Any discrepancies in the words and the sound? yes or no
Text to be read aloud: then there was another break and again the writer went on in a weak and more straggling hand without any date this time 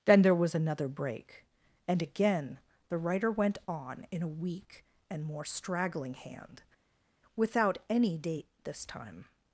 no